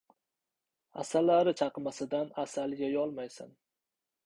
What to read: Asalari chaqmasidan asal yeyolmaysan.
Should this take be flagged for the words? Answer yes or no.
no